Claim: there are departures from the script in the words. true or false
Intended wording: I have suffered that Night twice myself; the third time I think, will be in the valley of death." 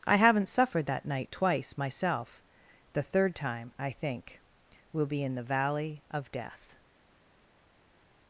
true